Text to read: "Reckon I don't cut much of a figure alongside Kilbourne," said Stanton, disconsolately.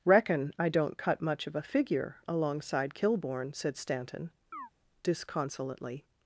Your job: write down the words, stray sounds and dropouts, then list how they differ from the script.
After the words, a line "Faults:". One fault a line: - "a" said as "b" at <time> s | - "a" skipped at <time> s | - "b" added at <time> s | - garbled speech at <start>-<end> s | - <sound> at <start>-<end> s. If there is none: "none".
"Reckon I don't cut much of a figure alongside Kilbourne," said Stanton, disconsolately.
Faults:
- chirp at 4.5-4.7 s